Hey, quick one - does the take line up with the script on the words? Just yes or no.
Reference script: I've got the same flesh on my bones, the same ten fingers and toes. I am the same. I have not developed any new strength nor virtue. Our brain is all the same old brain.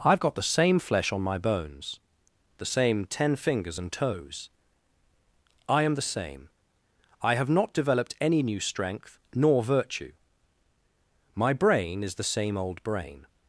no